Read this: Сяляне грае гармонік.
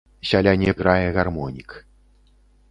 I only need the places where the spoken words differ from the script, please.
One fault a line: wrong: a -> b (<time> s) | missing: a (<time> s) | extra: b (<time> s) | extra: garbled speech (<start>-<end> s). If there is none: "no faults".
no faults